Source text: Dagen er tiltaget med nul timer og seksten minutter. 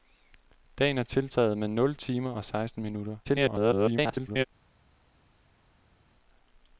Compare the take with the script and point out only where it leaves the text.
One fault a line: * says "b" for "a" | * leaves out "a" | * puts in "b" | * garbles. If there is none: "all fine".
* garbles